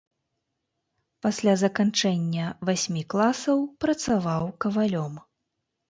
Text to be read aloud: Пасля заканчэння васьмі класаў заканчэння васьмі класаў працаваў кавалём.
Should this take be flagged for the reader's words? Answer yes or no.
yes